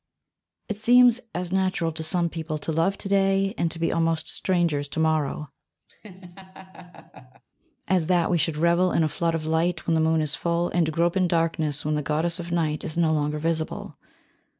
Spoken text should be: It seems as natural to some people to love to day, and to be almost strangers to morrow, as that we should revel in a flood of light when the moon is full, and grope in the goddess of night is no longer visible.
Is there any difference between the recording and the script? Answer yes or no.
yes